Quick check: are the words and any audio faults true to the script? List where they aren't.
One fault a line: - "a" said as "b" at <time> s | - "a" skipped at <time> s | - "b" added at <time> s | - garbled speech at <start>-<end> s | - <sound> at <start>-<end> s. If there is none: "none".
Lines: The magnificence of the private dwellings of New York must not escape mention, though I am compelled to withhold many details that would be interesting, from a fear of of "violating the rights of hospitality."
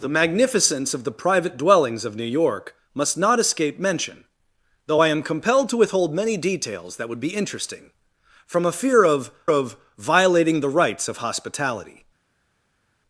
none